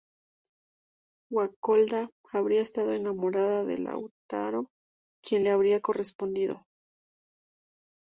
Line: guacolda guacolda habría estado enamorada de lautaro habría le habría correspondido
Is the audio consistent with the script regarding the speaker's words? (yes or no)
no